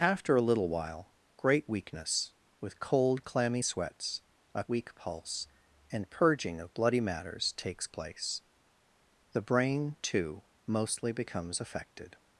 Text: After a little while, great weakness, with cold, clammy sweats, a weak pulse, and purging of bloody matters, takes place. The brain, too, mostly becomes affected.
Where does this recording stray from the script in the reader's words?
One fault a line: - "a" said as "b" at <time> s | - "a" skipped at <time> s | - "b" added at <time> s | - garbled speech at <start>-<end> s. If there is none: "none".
none